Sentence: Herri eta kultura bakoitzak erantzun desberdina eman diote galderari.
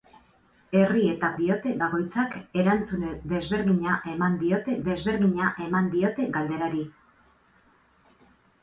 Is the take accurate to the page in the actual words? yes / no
no